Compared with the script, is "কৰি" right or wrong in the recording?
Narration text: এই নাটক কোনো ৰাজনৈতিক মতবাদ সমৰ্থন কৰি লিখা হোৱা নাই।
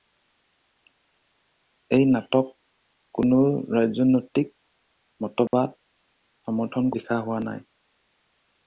wrong